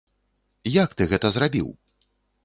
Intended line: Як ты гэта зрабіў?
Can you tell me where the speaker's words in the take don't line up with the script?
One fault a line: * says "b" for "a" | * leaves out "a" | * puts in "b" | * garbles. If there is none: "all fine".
all fine